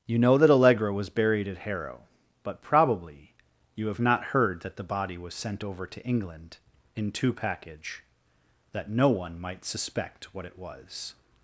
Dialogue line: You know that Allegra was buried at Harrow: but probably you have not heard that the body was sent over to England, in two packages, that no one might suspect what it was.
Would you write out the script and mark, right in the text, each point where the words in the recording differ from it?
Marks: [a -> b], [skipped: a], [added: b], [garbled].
You know that Allegra was buried at Harrow: but probably you have not heard that the body was sent over to England, in two [packages, -> package] that no one might suspect what it was.